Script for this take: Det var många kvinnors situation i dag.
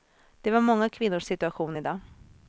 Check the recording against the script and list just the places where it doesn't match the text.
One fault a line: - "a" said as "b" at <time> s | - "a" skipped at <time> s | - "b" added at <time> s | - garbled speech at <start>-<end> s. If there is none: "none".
none